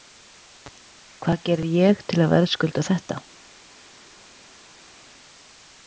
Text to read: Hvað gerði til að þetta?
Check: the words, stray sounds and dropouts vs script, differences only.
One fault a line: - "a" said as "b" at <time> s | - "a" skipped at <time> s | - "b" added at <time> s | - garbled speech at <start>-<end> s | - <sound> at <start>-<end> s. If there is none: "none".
- "ég" added at 1.8 s
- "verðskulda" added at 2.3 s